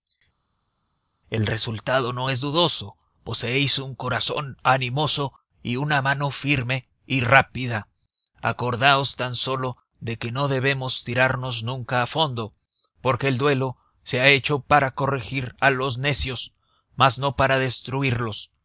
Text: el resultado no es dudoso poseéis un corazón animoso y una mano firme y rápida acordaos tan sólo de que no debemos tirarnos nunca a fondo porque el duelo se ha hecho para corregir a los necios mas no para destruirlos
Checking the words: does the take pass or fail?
pass